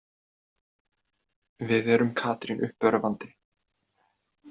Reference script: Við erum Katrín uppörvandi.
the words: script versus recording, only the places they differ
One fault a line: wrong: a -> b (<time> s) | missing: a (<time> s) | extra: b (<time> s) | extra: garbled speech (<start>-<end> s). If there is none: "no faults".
no faults